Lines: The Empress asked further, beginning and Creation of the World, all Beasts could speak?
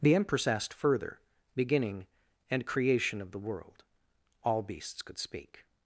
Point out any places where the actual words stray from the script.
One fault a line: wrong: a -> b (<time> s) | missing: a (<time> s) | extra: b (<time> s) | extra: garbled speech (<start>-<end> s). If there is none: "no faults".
no faults